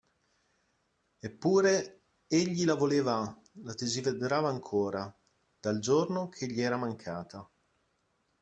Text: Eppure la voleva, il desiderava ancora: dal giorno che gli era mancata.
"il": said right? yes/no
no